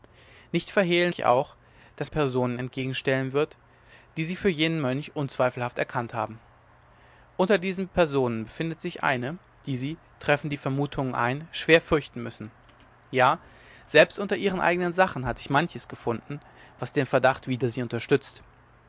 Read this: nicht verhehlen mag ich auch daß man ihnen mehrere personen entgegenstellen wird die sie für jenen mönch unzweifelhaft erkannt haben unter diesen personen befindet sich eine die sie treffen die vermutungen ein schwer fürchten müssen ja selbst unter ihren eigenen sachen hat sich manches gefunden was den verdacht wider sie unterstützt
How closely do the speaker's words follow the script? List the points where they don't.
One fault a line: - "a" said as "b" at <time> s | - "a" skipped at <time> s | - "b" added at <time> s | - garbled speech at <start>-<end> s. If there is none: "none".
- "mag" skipped at 1.1 s
- "man ihnen mehrere" skipped at 2.1 s